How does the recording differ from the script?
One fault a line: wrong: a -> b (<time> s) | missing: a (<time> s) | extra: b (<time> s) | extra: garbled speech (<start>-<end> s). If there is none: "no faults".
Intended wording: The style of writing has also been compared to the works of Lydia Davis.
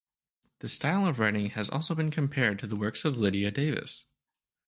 no faults